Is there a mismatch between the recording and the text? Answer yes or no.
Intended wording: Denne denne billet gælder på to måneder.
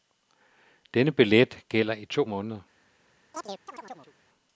yes